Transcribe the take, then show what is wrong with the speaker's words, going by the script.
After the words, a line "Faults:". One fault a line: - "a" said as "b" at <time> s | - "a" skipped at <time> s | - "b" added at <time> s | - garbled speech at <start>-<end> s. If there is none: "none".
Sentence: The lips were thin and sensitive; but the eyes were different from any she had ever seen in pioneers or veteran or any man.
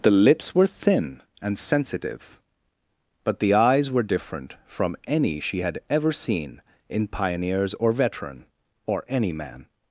The lips were thin and sensitive; but the eyes were different from any she had ever seen in pioneers or veteran or any man.
Faults:
none